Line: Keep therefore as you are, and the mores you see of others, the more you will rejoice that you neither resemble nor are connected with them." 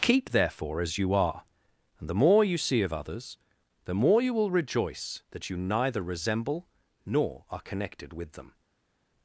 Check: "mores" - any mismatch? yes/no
yes